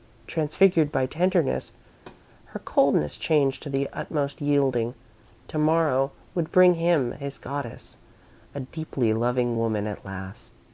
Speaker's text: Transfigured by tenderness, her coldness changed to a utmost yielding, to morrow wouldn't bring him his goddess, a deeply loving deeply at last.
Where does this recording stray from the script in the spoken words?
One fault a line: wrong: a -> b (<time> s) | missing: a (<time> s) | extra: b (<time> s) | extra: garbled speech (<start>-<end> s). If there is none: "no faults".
wrong: a -> the (3.7 s)
wrong: wouldn't -> would (6.3 s)
wrong: deeply -> woman (9.6 s)